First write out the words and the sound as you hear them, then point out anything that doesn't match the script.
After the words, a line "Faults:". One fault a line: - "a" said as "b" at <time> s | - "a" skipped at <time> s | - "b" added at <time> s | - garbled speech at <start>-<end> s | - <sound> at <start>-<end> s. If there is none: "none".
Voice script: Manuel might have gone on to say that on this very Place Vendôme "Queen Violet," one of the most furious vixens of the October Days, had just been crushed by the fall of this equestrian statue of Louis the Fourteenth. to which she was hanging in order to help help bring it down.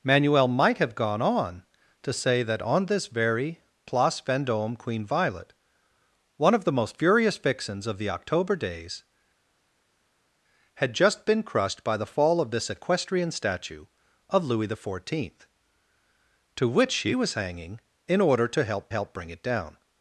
Manuel might have gone on to say that on this very Place Vendôme "Queen Violet," one of the most furious vixens of the October Days, had just been crushed by the fall of this equestrian statue of Louis the Fourteenth. to which she was hanging in order to help help bring it down.
Faults:
none